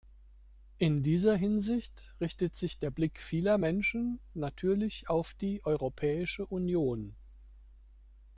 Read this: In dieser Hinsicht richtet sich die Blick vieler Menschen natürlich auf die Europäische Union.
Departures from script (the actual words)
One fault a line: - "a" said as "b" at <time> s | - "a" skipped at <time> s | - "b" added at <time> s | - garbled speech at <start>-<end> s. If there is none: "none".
- "die" said as "der" at 2.8 s